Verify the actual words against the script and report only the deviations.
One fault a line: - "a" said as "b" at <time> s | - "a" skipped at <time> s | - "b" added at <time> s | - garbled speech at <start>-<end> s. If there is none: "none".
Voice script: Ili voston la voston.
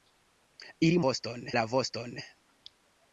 none